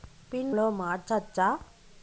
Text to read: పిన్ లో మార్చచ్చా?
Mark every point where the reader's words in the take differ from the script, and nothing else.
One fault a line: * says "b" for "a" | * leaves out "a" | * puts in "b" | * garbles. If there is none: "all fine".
all fine